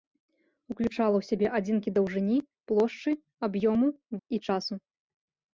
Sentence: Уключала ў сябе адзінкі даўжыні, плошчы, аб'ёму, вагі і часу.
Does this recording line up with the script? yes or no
no